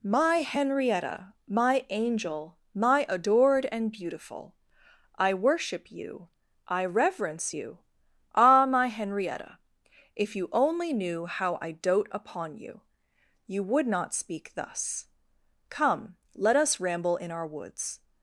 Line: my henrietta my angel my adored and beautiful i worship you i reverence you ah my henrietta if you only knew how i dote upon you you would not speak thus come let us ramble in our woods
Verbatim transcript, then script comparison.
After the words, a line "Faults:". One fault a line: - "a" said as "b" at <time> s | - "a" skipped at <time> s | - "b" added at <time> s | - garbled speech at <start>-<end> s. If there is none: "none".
my henrietta my angel my adored and beautiful i worship you i reverence you ah my henrietta if you only knew how i dote upon you you would not speak thus come let us ramble in our woods
Faults:
none